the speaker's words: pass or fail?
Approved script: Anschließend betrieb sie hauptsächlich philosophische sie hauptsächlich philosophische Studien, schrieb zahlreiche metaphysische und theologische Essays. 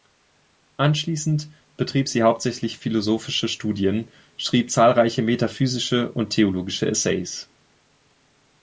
fail